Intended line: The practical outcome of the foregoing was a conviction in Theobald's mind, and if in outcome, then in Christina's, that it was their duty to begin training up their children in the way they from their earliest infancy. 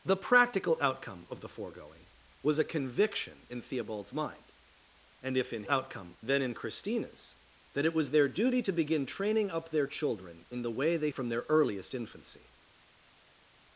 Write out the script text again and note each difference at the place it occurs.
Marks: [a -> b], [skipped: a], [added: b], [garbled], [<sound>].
The practical outcome of the foregoing was a conviction in Theobald's mind, and if in outcome, then in Christina's, that it was their duty to begin training up their children in the way they from their earliest infancy.